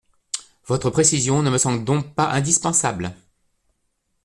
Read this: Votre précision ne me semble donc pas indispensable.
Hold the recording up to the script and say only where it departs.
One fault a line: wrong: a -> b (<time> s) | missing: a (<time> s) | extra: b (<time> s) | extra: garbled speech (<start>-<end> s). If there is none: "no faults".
no faults